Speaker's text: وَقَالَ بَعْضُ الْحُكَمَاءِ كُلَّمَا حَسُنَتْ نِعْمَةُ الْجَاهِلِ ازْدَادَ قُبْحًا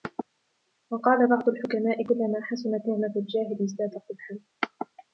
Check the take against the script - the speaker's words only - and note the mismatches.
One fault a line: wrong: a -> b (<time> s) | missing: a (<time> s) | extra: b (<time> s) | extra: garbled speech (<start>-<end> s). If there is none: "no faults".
no faults